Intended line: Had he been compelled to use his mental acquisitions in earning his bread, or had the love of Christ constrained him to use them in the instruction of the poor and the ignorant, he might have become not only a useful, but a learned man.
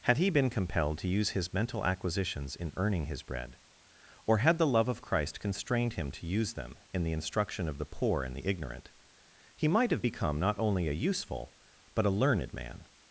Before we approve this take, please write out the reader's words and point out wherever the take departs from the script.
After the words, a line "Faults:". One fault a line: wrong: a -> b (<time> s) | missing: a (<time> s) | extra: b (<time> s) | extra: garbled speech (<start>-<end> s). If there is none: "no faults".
Had he been compelled to use his mental acquisitions in earning his bread, or had the love of Christ constrained him to use them in the instruction of the poor and the ignorant, he might have become not only a useful, but a learned man.
Faults:
no faults